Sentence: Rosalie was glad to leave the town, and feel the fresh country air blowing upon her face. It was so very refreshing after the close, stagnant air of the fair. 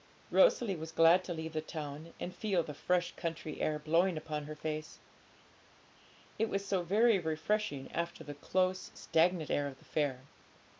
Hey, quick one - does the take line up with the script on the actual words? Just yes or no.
yes